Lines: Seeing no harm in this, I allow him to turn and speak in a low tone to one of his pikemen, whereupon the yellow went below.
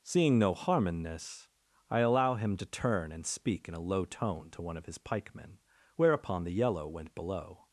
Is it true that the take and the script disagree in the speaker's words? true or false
false